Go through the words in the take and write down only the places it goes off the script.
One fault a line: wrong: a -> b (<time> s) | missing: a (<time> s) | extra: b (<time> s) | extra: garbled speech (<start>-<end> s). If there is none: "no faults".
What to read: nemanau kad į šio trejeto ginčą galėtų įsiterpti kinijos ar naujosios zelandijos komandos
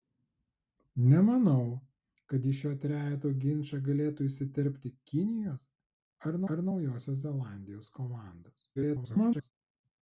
extra: ar (6.6 s)
extra: garbled speech (8.8-9.5 s)